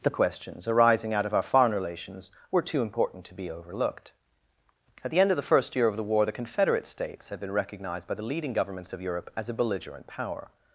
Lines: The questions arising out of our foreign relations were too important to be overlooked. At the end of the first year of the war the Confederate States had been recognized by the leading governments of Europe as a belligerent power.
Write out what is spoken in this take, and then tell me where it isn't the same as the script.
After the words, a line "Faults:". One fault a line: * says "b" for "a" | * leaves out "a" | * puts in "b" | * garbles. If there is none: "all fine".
The questions arising out of our foreign relations were too important to be overlooked. At the end of the first year of the war the Confederate States had been recognized by the leading governments of Europe as a belligerent power.
Faults:
all fine